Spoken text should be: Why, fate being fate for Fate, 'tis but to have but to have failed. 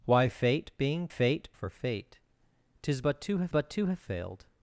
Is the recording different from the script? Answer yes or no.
no